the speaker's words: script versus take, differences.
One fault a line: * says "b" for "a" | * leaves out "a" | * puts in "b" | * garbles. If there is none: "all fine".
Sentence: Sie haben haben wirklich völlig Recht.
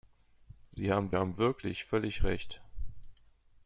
all fine